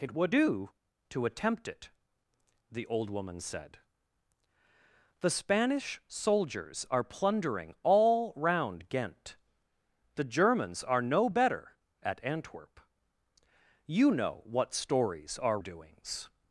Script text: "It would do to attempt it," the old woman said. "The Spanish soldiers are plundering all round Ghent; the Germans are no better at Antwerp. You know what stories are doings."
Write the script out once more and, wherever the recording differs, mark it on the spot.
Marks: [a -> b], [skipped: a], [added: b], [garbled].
"It would do to attempt it," the old woman said. "The Spanish soldiers are plundering all round Ghent; the Germans are no better at Antwerp. You know what stories are doings."